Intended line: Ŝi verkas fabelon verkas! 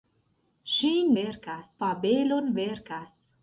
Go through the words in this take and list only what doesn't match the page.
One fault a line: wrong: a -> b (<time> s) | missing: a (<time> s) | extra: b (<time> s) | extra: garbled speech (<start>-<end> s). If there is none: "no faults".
no faults